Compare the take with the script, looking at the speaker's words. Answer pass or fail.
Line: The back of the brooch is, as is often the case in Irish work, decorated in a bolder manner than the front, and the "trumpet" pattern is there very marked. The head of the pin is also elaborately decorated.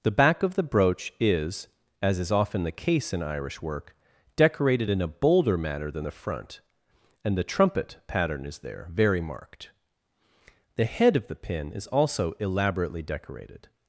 pass